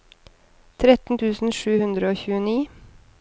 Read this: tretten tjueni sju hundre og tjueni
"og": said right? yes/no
yes